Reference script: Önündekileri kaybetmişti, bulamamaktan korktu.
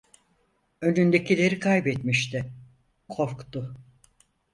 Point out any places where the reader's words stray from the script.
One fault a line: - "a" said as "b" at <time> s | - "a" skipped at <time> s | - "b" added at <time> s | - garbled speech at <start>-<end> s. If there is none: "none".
- "bulamamaktan" skipped at 2.5 s